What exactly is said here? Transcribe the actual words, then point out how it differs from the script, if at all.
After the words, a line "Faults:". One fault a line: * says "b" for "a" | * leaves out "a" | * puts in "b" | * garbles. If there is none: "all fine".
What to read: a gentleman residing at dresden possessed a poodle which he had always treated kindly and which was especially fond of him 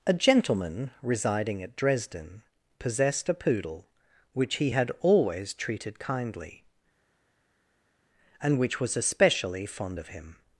a gentleman residing at dresden possessed a poodle which he had always treated kindly and which was especially fond of him
Faults:
all fine